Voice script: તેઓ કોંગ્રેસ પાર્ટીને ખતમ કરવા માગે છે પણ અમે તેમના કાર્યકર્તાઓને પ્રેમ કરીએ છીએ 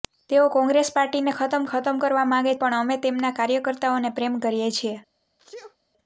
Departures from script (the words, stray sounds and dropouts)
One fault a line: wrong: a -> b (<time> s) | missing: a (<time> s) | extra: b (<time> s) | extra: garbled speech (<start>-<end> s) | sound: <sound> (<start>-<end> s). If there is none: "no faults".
extra: ખતમ (1.7 s)
missing: છે (2.5 s)
sound: sneeze (5.4-5.8 s)